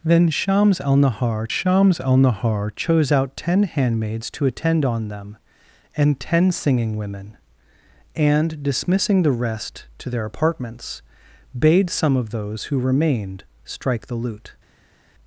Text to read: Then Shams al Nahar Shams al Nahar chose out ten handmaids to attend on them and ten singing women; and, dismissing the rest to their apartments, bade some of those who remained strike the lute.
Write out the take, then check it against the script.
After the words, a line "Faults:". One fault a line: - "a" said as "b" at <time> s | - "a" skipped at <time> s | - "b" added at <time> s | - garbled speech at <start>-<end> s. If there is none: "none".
Then Shams al Nahar Shams al Nahar chose out ten handmaids to attend on them and ten singing women; and, dismissing the rest to their apartments, bade some of those who remained strike the lute.
Faults:
none